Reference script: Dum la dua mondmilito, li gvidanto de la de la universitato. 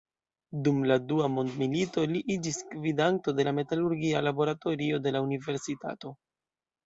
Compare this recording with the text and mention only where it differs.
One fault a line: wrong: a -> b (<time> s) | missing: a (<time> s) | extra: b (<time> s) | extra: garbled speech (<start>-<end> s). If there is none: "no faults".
extra: iĝis (2.4 s)
extra: metalurgia laboratorio (3.6 s)